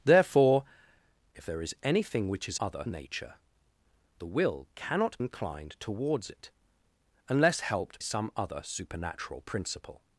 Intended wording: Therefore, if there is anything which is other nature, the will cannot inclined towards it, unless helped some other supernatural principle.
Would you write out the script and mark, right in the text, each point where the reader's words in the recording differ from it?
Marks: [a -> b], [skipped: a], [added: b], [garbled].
Therefore, if there is anything which is other nature, the will cannot inclined towards it, unless helped some other supernatural principle.